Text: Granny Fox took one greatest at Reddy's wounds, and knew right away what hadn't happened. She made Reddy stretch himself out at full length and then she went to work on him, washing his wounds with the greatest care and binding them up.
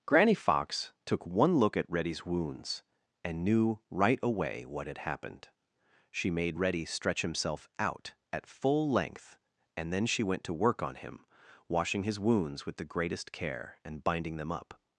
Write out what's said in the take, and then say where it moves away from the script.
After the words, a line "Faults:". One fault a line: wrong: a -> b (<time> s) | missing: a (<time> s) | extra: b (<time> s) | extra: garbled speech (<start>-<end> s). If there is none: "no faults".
Granny Fox took one look at Reddy's wounds, and knew right away what had happened. She made Reddy stretch himself out at full length and then she went to work on him, washing his wounds with the greatest care and binding them up.
Faults:
wrong: greatest -> look (1.6 s)
wrong: hadn't -> had (4.9 s)